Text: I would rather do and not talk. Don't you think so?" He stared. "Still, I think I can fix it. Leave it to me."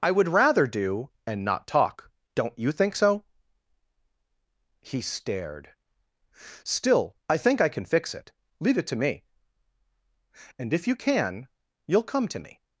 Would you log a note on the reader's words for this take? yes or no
yes